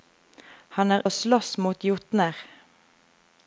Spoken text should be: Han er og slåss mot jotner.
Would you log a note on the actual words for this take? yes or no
no